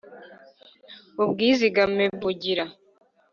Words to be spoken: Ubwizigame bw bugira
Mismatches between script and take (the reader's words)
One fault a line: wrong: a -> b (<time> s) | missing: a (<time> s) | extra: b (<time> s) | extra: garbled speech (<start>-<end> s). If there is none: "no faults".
no faults